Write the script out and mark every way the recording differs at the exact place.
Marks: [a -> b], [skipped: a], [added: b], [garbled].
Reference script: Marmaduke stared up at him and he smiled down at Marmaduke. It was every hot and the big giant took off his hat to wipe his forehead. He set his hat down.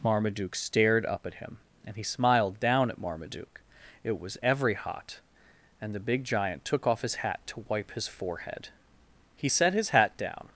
Marmaduke stared up at him and he smiled down at Marmaduke. It was every hot and the big giant took off his hat to wipe his forehead. He set his hat down.